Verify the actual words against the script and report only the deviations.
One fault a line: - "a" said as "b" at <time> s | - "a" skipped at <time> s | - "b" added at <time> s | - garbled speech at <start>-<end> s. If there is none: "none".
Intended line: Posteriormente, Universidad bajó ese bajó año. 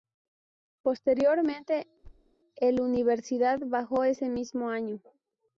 - "el" added at 2.6 s
- "bajó" said as "mismo" at 4.3 s